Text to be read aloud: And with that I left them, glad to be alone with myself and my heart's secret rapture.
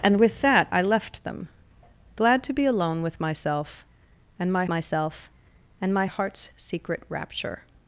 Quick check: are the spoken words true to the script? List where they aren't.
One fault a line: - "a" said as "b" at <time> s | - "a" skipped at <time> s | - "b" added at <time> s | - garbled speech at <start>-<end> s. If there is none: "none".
- "myself and my" added at 4.7 s